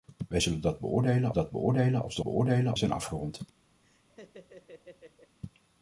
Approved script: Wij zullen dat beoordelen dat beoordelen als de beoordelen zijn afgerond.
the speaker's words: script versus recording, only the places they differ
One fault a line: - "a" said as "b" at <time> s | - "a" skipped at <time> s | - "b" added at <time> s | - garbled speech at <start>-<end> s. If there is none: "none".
none